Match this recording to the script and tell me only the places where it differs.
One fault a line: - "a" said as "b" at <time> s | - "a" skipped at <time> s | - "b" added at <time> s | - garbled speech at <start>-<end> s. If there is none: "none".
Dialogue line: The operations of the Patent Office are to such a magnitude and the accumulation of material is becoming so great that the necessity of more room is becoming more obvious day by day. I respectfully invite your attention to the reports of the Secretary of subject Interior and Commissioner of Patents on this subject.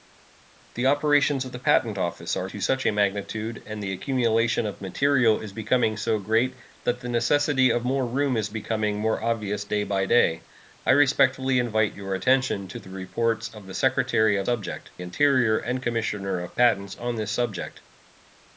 none